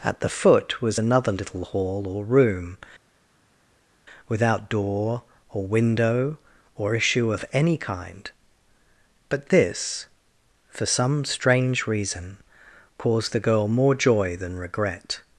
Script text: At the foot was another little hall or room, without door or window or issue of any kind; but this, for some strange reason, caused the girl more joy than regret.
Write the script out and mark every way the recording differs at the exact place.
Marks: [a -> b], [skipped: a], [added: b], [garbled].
At the foot was another little hall or room, without door or window or issue of any kind; but this, for some strange reason, caused the girl more joy than regret.